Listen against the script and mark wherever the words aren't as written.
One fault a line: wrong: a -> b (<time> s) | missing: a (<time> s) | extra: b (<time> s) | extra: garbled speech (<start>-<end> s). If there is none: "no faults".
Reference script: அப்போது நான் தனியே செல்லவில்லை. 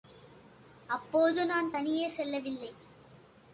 no faults